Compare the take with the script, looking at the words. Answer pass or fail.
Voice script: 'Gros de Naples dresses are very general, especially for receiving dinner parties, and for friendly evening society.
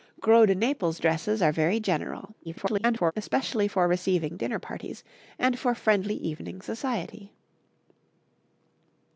fail